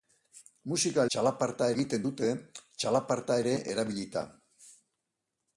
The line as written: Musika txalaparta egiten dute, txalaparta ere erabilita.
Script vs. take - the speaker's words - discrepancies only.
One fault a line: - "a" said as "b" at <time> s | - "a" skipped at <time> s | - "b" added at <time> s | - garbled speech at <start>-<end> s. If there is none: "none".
none